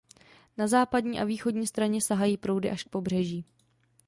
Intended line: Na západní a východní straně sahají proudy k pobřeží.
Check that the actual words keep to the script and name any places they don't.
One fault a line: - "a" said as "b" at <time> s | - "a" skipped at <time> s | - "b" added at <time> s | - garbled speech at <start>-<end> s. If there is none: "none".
- "až" added at 2.7 s